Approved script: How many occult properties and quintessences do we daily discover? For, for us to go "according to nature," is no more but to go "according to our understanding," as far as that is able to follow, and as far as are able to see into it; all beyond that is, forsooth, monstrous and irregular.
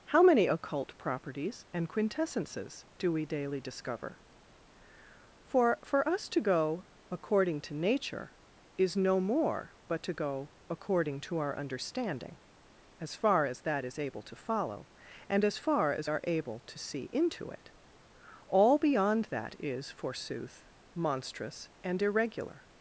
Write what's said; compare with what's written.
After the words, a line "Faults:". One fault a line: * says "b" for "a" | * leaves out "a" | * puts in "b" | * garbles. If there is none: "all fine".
How many occult properties and quintessences do we daily discover? For, for us to go "according to nature," is no more but to go "according to our understanding," as far as that is able to follow, and as far as are able to see into it; all beyond that is, forsooth, monstrous and irregular.
Faults:
all fine